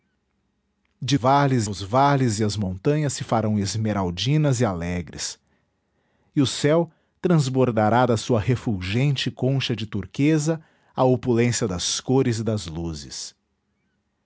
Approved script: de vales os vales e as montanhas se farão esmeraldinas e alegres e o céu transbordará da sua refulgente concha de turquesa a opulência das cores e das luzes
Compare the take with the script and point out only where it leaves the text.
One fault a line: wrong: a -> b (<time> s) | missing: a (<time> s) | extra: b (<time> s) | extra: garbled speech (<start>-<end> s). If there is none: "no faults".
no faults